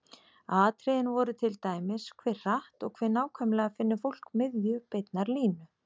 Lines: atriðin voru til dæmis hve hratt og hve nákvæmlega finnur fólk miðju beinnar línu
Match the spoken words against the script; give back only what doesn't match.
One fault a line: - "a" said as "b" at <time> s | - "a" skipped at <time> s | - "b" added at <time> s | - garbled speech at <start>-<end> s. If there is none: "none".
none